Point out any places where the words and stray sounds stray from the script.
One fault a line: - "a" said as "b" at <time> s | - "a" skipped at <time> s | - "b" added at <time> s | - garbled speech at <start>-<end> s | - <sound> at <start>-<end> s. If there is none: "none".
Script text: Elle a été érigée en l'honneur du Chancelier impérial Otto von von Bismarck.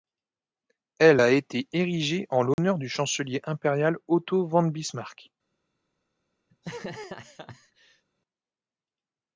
- dropout at 2.5-2.6 s
- "von" skipped at 4.6 s
- laugh at 6.5-8.0 s